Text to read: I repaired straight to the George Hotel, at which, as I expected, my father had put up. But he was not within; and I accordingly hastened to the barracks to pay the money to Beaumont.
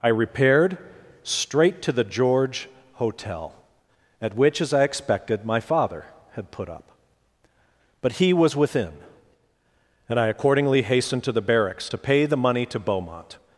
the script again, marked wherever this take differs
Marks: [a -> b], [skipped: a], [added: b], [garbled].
I repaired straight to the George Hotel, at which, as I expected, my father had put up. But he was [skipped: not] within; and I accordingly hastened to the barracks to pay the money to Beaumont.